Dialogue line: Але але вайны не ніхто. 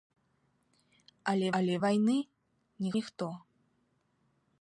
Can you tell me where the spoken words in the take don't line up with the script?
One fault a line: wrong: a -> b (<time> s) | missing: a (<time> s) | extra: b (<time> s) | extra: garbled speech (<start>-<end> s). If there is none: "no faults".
no faults